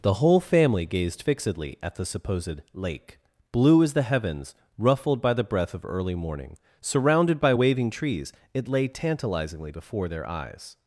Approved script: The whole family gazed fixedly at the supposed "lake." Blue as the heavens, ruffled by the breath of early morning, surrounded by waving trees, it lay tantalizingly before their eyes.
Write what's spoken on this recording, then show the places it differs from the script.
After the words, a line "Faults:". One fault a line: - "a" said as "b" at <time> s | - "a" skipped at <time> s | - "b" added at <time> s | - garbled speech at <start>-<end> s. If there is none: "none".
The whole family gazed fixedly at the supposed "lake." Blue as the heavens, ruffled by the breath of early morning, surrounded by waving trees, it lay tantalizingly before their eyes.
Faults:
none